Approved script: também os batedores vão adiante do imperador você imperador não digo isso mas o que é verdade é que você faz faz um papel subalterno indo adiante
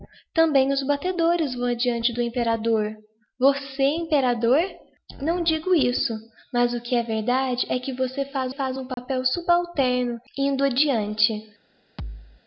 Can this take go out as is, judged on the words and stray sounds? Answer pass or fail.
fail